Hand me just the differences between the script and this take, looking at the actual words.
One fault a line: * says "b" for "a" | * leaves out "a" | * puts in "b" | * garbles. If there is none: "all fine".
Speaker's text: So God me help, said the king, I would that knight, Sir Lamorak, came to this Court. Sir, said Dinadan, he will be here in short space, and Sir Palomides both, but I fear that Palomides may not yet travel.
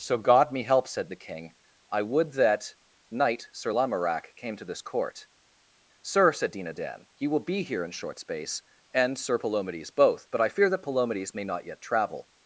all fine